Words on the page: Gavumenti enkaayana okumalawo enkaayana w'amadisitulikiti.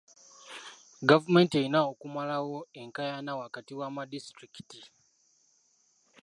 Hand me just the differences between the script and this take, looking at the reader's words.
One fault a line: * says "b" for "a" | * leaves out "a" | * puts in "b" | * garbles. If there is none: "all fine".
* says "erina" for "enkaayana"
* puts in "wakati"